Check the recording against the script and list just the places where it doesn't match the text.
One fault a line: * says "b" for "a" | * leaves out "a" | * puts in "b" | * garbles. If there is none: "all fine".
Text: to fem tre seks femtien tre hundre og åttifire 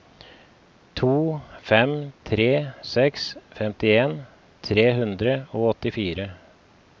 all fine